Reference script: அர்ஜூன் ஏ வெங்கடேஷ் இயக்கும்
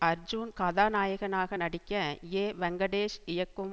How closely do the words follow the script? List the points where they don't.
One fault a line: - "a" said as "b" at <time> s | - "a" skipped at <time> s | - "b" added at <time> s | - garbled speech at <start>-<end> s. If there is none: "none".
- "கதாநாயகனாக நடிக்க" added at 0.5 s